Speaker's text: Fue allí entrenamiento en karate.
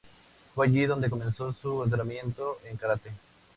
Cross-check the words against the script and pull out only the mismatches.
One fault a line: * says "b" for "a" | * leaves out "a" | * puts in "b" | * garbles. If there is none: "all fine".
* puts in "donde comenzó su"